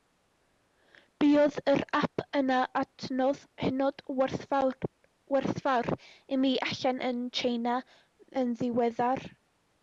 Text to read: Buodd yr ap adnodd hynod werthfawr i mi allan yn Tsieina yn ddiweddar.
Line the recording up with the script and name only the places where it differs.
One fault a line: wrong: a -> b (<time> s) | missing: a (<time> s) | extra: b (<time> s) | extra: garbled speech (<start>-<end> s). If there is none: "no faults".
extra: yn (2.4 s)